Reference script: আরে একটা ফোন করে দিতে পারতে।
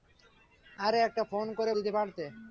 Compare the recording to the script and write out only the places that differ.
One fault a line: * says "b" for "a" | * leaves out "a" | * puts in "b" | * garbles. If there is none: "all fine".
all fine